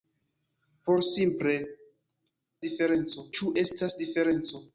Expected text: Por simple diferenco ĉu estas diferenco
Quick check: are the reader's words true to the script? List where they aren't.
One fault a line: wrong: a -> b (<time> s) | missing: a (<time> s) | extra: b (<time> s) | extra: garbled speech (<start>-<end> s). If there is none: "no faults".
no faults